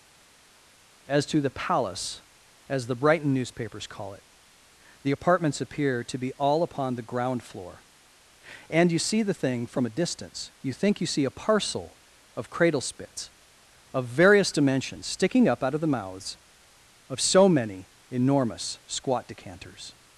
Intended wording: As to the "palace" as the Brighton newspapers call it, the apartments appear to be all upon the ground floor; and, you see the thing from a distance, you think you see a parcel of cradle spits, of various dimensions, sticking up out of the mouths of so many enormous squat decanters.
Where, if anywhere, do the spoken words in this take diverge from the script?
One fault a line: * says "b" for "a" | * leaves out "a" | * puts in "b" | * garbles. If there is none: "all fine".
all fine